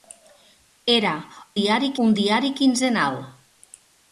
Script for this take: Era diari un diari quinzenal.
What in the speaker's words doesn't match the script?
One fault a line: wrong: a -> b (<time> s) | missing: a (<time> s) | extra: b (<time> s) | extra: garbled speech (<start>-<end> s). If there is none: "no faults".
no faults